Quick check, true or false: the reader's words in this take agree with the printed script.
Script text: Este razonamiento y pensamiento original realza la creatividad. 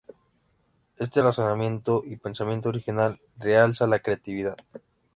true